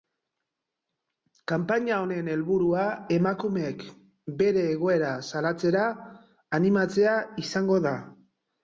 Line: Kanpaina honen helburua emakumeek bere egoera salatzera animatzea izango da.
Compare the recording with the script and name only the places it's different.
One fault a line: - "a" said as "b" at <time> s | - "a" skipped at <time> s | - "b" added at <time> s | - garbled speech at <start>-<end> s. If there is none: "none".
none